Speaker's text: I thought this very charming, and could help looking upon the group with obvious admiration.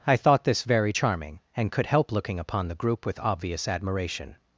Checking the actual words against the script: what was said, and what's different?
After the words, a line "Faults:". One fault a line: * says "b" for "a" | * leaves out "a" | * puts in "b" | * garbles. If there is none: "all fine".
I thought this very charming, and could help looking upon the group with obvious admiration.
Faults:
all fine